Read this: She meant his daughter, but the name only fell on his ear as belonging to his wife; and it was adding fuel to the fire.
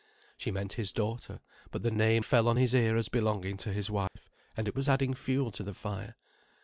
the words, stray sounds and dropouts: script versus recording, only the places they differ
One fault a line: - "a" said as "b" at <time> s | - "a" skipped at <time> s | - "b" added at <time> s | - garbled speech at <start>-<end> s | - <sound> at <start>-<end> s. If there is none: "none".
- "only" skipped at 2.2 s
- dropout at 4.1-4.2 s